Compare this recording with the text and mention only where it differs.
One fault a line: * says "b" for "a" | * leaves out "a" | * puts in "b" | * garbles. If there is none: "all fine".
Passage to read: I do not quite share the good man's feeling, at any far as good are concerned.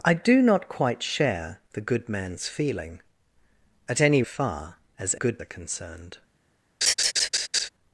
all fine